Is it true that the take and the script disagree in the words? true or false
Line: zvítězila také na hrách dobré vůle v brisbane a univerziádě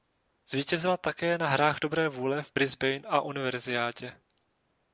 false